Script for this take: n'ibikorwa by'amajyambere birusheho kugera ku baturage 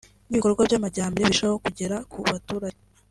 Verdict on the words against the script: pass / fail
pass